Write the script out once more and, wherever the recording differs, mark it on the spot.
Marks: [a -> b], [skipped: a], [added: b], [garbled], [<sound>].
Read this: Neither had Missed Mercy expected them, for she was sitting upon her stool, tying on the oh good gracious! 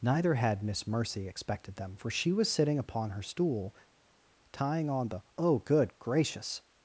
Neither had [Missed -> Miss] Mercy expected them, for she was sitting upon her stool, tying on the oh good gracious!